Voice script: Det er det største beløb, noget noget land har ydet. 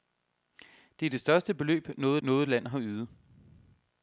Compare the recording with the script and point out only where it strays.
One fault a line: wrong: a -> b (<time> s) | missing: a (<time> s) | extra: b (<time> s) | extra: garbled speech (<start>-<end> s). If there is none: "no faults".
no faults